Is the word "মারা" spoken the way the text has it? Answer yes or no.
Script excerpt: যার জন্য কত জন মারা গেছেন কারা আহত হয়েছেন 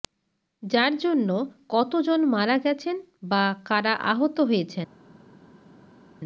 yes